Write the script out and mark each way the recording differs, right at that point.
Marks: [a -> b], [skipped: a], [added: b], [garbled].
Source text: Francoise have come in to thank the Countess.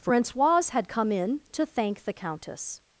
Francoise [have -> had] come in to thank the Countess.